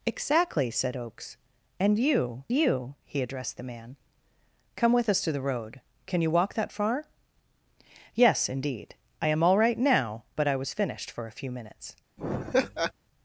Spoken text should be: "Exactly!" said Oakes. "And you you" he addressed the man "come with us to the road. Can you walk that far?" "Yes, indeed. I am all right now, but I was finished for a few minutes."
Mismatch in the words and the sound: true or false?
true